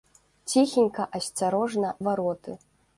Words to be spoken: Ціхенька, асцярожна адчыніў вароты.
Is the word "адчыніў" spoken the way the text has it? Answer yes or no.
no